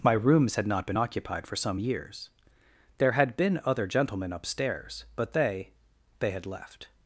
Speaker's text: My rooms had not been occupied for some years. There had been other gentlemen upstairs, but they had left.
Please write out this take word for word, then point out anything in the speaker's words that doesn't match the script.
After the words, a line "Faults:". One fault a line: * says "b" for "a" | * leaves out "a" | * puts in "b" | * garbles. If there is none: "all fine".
My rooms had not been occupied for some years. There had been other gentlemen upstairs, but they they had left.
Faults:
* puts in "they"